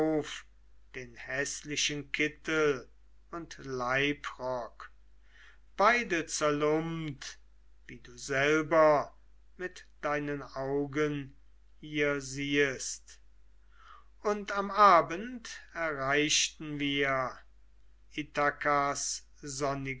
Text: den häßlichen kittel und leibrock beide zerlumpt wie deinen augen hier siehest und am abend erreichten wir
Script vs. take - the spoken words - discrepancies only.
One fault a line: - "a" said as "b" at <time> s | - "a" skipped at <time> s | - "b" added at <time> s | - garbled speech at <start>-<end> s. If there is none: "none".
- "du selber mit" added at 8.0 s